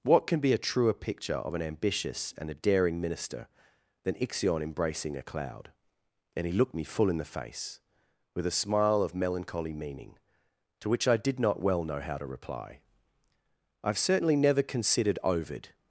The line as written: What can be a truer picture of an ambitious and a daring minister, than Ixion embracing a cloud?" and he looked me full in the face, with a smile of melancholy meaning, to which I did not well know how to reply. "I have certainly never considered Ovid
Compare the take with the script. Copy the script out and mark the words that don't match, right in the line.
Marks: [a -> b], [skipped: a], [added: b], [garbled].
What can be a truer picture of an ambitious and a daring minister, than Ixion embracing a cloud?" and he looked me full in the face, with a smile of melancholy meaning, to which I did not well know how to reply. "I have certainly never considered Ovid